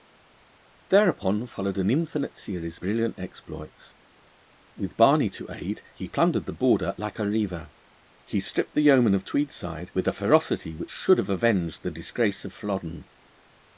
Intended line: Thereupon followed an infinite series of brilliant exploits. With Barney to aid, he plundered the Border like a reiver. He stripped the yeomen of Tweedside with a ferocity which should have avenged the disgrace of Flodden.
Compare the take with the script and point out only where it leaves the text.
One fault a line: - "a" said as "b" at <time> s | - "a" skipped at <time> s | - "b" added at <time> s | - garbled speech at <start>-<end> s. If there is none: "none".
- "of" skipped at 2.8 s